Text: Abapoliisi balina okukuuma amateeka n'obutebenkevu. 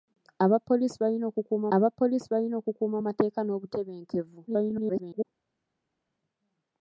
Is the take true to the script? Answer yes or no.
no